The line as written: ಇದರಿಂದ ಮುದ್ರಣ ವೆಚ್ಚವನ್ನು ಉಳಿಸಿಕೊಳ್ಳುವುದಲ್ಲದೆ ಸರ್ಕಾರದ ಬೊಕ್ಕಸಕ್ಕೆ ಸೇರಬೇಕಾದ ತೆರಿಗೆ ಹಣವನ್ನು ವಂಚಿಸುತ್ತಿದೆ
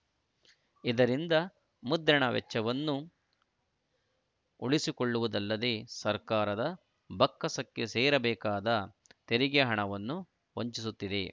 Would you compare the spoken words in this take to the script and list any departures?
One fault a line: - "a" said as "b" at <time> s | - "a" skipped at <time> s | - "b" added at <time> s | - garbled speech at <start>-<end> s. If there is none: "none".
none